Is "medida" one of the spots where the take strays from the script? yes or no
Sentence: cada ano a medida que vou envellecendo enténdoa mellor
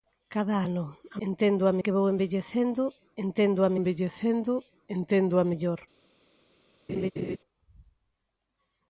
yes